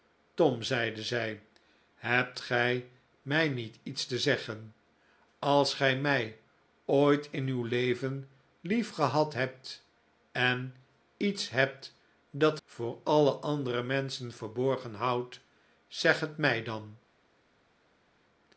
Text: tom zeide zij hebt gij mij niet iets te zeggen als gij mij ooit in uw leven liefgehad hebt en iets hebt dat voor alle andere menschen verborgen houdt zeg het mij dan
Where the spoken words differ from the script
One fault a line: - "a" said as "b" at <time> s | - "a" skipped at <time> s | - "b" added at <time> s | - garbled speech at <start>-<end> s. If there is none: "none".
none